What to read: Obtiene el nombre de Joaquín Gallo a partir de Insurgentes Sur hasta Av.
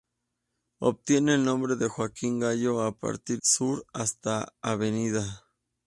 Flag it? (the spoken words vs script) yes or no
yes